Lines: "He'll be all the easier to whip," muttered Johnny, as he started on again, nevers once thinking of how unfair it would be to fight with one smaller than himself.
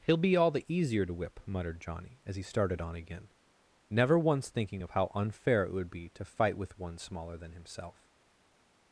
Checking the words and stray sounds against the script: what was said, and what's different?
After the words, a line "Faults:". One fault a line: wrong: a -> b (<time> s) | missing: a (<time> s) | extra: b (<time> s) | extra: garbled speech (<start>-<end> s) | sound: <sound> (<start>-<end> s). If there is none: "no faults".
"He'll be all the easier to whip," muttered Johnny, as he started on again, never once thinking of how unfair it would be to fight with one smaller than himself.
Faults:
wrong: nevers -> never (3.9 s)